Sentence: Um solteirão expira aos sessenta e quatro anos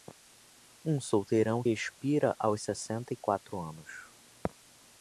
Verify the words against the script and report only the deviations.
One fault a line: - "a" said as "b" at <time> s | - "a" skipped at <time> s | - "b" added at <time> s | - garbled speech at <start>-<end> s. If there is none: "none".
none